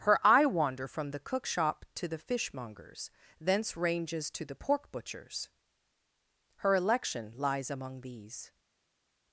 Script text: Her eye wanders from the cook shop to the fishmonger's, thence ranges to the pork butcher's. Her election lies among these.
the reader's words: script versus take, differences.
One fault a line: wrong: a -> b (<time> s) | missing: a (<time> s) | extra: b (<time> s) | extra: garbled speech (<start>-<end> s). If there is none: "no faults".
wrong: wanders -> wander (0.5 s)